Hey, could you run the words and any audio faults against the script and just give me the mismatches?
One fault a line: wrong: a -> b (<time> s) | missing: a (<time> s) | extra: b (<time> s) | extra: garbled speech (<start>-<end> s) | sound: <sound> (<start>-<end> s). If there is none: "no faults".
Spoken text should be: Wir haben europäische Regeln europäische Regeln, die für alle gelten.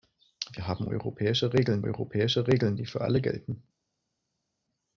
no faults